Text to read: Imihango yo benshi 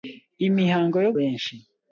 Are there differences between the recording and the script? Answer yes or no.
no